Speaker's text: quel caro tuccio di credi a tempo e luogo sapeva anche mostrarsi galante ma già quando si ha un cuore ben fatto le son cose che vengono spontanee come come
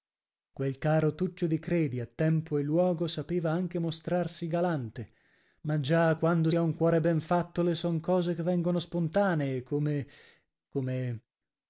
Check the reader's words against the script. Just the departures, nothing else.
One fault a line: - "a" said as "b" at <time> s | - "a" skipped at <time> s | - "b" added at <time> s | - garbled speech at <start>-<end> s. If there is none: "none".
- "si" skipped at 6.5 s